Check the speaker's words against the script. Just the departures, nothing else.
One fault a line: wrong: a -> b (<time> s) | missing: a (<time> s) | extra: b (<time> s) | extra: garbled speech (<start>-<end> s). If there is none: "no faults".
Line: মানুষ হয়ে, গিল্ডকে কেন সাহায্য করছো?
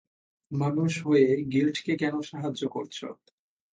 no faults